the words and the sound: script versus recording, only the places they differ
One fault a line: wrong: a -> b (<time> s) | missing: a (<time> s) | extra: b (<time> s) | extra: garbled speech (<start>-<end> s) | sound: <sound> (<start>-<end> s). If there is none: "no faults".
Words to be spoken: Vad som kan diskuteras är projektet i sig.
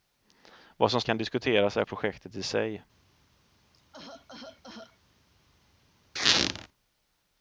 sound: cough (3.7-5.0 s)
sound: squeak (6.2-6.7 s)